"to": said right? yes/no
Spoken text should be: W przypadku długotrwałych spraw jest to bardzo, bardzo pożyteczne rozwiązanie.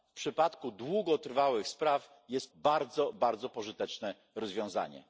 no